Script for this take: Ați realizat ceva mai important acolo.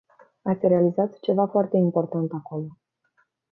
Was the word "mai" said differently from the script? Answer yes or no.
yes